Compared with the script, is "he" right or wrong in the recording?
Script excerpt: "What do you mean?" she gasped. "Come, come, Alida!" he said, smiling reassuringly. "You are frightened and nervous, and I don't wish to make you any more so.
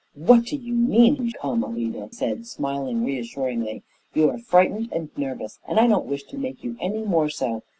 wrong